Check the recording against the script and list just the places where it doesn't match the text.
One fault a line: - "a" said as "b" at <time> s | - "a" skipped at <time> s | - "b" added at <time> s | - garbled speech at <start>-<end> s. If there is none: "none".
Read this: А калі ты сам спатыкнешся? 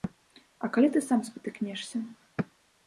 none